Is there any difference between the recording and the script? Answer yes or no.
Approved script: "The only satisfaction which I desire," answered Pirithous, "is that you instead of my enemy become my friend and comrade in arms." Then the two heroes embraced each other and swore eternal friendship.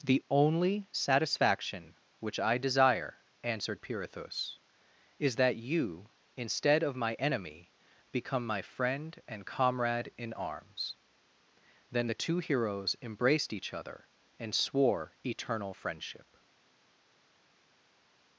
no